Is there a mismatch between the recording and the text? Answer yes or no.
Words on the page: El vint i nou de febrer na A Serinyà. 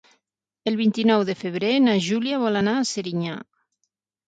yes